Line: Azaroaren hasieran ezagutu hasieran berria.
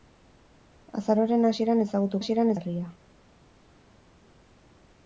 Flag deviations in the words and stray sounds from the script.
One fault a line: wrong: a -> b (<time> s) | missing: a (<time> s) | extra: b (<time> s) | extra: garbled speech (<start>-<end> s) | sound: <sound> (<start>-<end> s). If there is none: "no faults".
no faults